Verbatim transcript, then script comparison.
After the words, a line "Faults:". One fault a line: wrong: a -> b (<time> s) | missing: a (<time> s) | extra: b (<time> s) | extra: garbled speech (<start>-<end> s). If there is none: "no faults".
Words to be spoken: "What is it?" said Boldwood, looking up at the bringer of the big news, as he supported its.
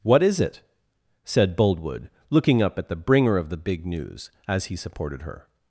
"What is it?" said Boldwood, looking up at the bringer of the big news, as he supported her.
Faults:
wrong: its -> her (5.2 s)